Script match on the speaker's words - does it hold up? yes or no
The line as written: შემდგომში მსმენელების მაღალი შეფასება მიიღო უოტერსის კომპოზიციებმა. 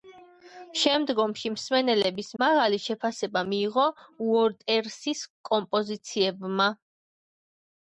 yes